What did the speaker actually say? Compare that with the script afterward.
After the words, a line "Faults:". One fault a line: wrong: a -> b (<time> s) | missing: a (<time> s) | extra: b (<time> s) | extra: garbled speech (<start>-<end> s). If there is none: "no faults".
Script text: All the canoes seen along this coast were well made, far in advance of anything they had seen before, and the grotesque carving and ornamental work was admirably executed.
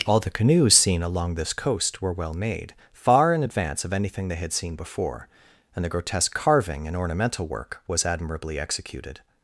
All the canoes seen along this coast were well made, far in advance of anything they had seen before, and the grotesque carving and ornamental work was admirably executed.
Faults:
no faults